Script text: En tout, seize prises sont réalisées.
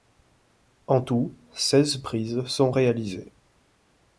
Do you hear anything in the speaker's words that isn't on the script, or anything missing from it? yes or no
no